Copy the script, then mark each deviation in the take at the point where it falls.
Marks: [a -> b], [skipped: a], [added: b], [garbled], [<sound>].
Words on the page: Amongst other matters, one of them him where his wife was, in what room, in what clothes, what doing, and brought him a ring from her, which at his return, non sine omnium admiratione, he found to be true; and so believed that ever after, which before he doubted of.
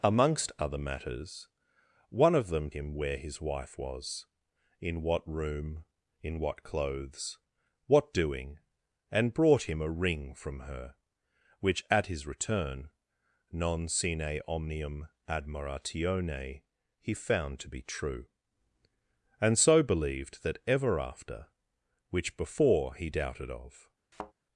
Amongst other matters, one of them him where his wife was, in what room, in what clothes, what doing, and brought him a ring from her, which at his return, non sine omnium admiratione, he found to be true; and so believed that ever after, which before he doubted of. [thud]